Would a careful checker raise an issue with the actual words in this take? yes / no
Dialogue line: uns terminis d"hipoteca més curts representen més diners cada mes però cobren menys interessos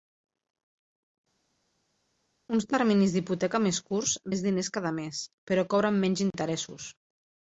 yes